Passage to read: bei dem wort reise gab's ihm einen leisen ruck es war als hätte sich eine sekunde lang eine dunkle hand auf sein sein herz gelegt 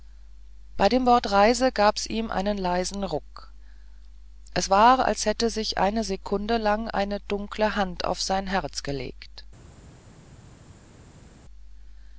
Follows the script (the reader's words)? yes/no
no